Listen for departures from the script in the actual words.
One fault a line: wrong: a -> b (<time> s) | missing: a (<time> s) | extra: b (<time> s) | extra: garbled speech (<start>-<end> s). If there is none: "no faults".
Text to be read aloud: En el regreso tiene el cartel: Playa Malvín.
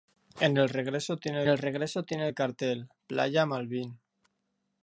extra: regreso tiene el (1.6 s)